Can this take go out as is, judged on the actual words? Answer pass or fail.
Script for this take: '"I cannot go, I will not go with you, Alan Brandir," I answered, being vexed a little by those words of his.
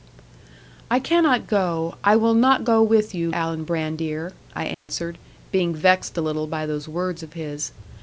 pass